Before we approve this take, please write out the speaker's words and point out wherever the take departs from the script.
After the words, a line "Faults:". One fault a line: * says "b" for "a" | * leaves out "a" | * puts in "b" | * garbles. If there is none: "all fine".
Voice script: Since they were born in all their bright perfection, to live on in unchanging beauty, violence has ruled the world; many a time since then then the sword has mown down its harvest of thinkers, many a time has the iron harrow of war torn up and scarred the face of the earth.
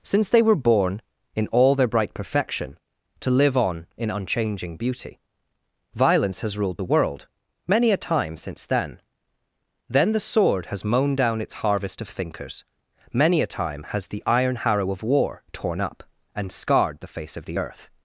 Since they were born in all their bright perfection, to live on in unchanging beauty, violence has ruled the world; many a time since then then the sword has mown down its harvest of thinkers, many a time has the iron harrow of war torn up and scarred the face of the earth.
Faults:
all fine